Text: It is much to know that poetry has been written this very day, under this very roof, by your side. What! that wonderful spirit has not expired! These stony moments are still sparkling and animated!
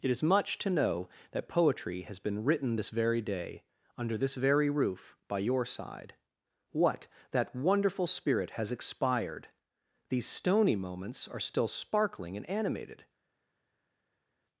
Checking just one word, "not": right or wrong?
wrong